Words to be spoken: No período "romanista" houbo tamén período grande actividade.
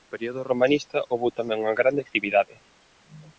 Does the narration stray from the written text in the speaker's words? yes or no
yes